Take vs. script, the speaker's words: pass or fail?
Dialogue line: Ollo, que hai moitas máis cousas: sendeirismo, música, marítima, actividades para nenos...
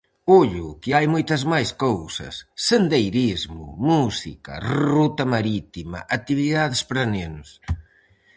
fail